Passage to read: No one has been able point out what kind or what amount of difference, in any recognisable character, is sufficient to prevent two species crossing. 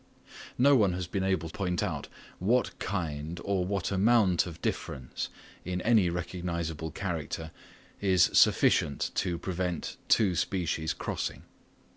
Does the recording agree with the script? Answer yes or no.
yes